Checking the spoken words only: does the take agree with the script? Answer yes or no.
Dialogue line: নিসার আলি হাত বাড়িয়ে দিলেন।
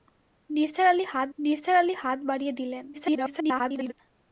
no